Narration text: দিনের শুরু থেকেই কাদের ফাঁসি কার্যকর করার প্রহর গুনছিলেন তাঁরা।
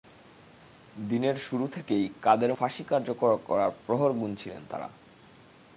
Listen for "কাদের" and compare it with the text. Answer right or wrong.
right